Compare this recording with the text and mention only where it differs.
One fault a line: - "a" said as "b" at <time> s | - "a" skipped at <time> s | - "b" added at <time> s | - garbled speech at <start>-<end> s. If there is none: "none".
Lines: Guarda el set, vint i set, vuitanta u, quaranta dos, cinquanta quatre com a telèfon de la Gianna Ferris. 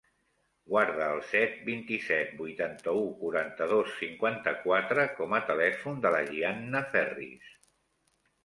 none